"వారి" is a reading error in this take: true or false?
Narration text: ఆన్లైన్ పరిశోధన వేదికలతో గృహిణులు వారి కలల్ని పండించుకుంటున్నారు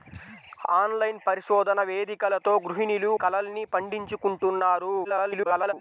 true